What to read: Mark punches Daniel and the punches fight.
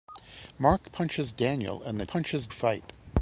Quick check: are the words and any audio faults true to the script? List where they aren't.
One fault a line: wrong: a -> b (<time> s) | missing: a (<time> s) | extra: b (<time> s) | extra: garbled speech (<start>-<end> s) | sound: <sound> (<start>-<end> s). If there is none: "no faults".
no faults